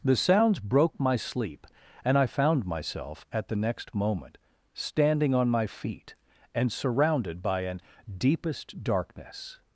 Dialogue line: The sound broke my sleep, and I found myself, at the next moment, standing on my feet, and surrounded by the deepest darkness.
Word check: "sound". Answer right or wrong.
wrong